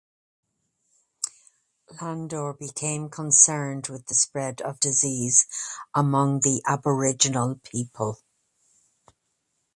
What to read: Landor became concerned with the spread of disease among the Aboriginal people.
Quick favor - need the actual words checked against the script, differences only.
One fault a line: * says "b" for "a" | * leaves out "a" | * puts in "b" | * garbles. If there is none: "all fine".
all fine